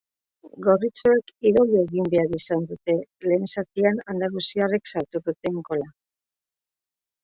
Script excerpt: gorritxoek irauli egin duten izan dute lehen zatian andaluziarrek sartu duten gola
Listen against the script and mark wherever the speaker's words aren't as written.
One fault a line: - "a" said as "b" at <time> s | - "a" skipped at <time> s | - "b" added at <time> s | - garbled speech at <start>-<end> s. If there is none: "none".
- "duten" said as "behar" at 2.1 s